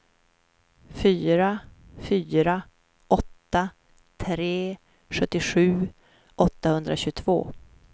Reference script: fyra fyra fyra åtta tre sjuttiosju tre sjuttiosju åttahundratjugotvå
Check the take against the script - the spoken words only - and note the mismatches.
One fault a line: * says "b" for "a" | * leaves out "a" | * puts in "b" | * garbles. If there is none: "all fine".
* leaves out "fyra"
* leaves out "tre sjuttiosju"